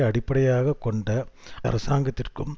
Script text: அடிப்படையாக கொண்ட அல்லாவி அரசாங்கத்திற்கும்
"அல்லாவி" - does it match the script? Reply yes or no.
no